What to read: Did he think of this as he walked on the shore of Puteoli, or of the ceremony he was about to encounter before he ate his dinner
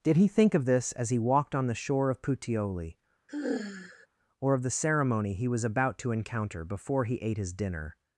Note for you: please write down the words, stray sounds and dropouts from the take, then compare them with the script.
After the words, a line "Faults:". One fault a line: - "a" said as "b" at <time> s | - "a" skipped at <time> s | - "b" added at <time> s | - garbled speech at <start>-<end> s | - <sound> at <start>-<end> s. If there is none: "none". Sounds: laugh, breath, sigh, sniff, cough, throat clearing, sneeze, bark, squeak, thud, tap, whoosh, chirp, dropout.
Did he think of this as he walked on the shore of Puteoli, or of the ceremony he was about to encounter before he ate his dinner
Faults:
- sigh at 3.3-4.1 s